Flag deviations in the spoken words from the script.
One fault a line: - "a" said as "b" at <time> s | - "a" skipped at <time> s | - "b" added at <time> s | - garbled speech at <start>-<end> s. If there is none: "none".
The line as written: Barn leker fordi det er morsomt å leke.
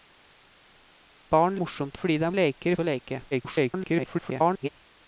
- "leker" said as "morsomt" at 1.6 s
- "morsomt" said as "leker" at 2.4 s
- garbled speech at 3.3-4.7 s